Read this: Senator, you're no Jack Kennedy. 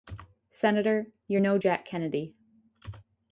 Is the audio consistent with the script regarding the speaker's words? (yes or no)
yes